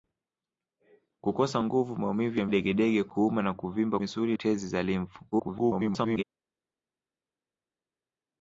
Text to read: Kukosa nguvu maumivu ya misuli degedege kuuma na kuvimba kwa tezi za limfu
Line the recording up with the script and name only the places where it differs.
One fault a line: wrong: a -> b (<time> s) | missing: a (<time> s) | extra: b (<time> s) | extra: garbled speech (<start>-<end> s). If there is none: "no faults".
missing: misuli (2.5 s)
wrong: kwa -> misuli (4.0 s)
extra: garbled speech (5.3-6.2 s)